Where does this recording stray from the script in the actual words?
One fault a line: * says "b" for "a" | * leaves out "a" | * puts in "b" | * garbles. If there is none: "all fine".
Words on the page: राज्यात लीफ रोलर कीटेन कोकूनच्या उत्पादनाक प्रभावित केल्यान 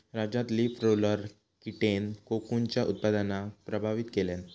all fine